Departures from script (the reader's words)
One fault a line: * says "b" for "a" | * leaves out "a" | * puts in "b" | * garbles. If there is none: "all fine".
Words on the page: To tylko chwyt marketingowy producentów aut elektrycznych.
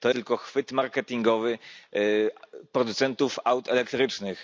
all fine